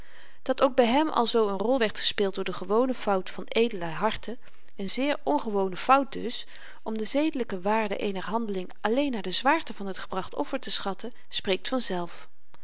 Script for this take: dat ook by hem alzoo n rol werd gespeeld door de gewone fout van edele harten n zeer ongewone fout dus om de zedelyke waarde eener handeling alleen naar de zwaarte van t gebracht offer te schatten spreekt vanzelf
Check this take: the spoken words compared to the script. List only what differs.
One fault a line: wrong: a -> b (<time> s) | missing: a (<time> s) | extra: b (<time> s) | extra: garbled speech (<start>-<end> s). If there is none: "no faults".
no faults